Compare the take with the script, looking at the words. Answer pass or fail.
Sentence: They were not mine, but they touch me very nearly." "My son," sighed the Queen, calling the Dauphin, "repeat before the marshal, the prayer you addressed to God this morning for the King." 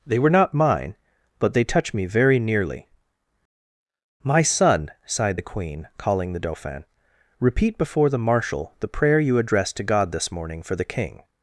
pass